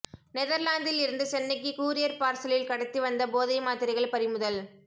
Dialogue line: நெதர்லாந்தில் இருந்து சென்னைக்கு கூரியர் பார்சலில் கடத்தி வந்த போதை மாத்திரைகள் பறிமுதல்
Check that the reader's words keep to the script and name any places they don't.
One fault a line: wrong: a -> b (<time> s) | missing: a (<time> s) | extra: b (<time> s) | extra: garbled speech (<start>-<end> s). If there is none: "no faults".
no faults